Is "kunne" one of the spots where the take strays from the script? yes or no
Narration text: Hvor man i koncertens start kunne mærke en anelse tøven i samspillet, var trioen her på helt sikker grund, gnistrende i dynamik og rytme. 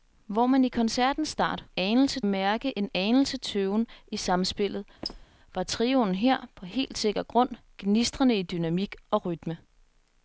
yes